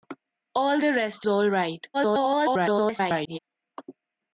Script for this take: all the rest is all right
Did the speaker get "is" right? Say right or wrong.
wrong